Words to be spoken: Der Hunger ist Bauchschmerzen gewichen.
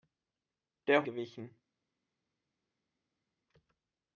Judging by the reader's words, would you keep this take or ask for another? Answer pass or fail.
fail